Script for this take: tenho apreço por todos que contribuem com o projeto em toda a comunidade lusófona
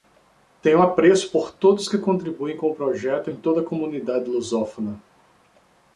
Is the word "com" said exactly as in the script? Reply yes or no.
yes